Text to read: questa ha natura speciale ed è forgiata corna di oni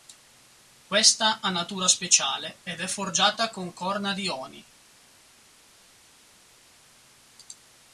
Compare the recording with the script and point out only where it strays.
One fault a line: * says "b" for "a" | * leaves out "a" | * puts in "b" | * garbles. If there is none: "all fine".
* puts in "con"